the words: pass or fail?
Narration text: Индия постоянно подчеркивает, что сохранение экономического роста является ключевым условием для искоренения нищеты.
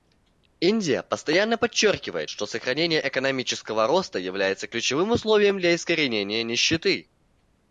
pass